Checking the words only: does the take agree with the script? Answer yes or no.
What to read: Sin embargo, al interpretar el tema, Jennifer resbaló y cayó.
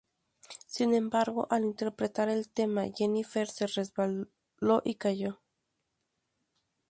no